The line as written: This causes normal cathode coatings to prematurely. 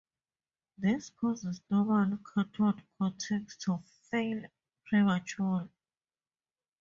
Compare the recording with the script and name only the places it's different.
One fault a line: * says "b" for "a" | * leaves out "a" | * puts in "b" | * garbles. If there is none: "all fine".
* puts in "fail"